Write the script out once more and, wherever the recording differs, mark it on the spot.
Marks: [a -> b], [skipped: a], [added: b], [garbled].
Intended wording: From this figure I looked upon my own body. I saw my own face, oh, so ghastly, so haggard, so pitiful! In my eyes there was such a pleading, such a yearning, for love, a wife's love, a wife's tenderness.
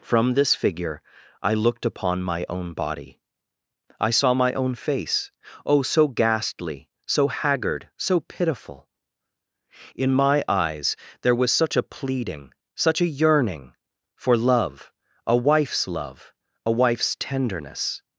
From this figure I looked upon my own body. I saw my own face, oh, so ghastly, so haggard, so pitiful! In my eyes there was such a pleading, such a yearning, for love, a wife's love, a wife's tenderness.